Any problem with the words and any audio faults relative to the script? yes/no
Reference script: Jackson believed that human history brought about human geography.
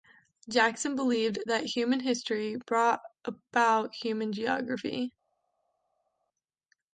no